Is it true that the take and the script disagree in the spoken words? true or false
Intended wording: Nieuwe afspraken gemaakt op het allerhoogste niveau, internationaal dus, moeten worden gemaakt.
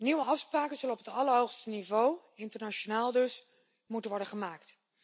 true